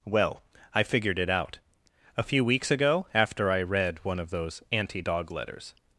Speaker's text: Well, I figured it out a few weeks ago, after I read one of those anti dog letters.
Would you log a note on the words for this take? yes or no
no